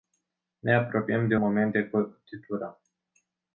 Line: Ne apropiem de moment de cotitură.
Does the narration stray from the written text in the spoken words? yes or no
no